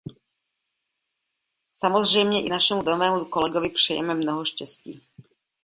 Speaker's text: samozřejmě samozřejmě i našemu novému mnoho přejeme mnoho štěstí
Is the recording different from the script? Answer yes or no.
yes